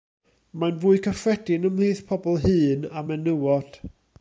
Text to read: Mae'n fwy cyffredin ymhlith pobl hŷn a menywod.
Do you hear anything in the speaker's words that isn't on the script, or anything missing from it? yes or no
no